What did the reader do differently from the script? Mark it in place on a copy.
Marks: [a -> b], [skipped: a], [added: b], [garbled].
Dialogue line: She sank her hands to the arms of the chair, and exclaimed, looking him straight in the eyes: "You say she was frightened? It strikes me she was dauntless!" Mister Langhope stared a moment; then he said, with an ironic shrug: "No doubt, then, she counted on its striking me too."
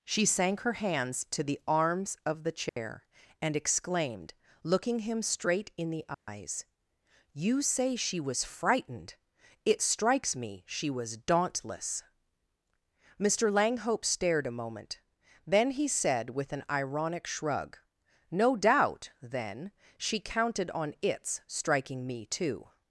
She sank her hands to the arms of the chair, and exclaimed, looking him straight in the eyes: "You say she was frightened? It strikes me she was dauntless!" Mister Langhope stared a moment; then he said, with an ironic shrug: "No doubt, then, she counted on its striking me too."